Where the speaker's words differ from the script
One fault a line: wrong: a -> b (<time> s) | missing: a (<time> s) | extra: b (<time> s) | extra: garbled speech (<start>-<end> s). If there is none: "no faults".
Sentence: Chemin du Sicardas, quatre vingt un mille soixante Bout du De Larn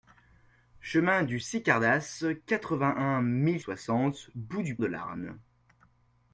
no faults